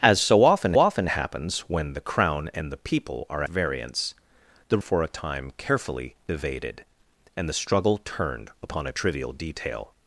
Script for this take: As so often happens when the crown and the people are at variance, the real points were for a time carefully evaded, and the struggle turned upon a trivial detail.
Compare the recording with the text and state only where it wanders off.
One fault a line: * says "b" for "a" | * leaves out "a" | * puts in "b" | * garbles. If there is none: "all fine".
* puts in "often"
* leaves out "at"
* leaves out "real points were"